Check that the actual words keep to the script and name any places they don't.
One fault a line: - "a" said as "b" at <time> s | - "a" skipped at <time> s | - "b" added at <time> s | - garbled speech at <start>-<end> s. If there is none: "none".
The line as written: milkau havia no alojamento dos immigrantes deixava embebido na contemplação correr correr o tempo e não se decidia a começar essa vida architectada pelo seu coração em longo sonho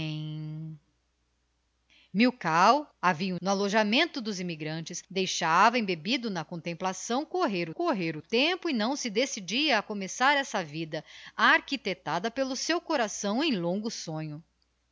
none